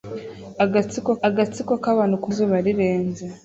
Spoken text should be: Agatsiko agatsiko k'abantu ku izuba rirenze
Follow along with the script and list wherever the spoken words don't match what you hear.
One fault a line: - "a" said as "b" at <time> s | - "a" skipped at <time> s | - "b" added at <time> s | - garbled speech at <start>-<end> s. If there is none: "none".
none